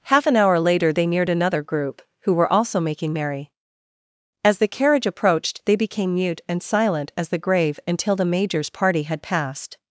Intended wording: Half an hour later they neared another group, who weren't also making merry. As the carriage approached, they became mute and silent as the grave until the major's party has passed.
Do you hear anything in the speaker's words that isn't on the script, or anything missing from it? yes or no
yes